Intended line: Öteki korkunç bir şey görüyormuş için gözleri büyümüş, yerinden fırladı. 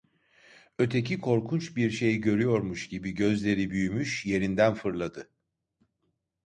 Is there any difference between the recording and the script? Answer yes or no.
yes